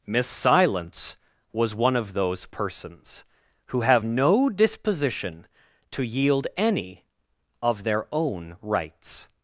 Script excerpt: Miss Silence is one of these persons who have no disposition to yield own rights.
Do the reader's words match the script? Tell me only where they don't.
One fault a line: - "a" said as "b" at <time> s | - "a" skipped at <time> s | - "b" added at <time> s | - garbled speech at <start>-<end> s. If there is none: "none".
- "is" said as "was" at 1.5 s
- "these" said as "those" at 2.1 s
- "any of their" added at 6.6 s